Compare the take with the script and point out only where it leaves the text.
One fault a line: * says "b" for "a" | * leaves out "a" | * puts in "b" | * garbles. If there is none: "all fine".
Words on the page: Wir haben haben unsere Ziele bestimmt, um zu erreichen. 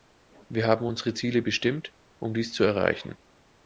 * leaves out "haben"
* puts in "dies"